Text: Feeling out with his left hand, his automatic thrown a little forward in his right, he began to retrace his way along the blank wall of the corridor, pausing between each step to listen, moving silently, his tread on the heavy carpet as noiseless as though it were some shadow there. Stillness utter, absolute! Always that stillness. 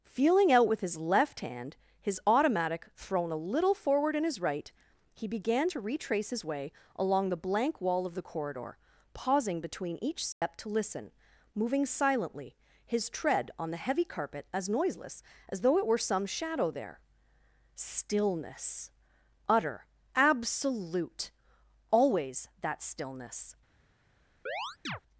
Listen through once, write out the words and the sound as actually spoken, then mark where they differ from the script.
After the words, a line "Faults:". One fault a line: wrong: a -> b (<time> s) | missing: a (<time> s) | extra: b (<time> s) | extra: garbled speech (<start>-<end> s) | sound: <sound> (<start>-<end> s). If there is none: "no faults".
Feeling out with his left hand, his automatic thrown a little forward in his right, he began to retrace his way along the blank wall of the corridor, pausing between each step to listen, moving silently, his tread on the heavy carpet as noiseless as though it were some shadow there. Stillness utter, absolute! Always that stillness.
Faults:
sound: dropout (10.3-10.4 s)
sound: chirp (24.5-25.0 s)